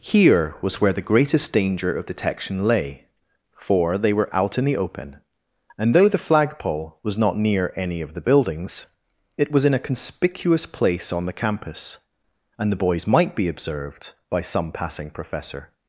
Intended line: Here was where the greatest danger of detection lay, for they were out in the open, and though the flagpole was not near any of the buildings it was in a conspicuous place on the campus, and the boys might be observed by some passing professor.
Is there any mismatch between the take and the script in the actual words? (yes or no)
no